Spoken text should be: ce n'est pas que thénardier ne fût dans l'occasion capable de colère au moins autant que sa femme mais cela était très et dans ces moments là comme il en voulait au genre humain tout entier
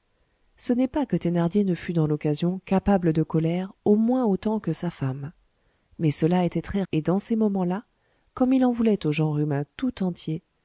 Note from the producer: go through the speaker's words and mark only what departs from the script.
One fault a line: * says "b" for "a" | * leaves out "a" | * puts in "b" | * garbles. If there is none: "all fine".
all fine